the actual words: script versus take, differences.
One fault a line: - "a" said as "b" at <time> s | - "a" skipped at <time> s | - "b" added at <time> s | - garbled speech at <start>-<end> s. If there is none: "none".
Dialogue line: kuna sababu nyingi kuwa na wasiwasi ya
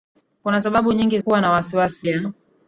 none